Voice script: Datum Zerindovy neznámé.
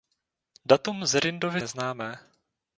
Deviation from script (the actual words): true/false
false